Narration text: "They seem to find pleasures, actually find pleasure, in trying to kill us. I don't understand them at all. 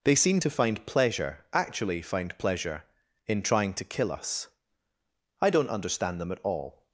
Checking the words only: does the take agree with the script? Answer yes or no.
no